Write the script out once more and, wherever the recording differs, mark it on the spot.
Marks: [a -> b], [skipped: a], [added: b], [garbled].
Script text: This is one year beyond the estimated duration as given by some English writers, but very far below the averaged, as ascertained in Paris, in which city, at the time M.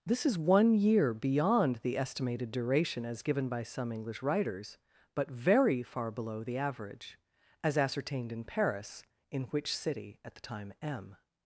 This is one year beyond the estimated duration as given by some English writers, but very far below the [averaged, -> average] as ascertained in Paris, in which city, at the time M.